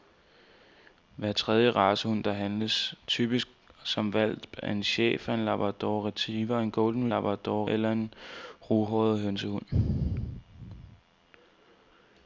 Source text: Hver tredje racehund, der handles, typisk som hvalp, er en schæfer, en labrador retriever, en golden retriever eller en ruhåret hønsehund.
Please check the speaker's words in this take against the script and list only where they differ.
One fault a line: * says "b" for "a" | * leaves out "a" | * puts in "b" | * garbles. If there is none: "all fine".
* says "labrador" for "retriever"